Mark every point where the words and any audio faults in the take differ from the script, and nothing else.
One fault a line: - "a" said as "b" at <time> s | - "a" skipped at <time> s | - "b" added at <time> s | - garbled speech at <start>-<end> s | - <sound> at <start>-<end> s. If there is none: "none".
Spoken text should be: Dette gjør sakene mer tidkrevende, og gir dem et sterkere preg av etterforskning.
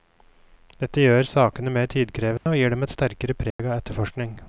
- dropout at 2.4-2.5 s
- dropout at 3.5-3.6 s